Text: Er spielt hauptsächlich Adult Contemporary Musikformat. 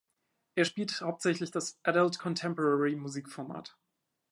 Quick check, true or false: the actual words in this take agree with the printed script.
false